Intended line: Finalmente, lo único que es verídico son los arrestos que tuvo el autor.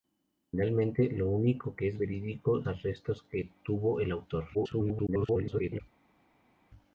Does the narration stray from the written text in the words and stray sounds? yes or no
yes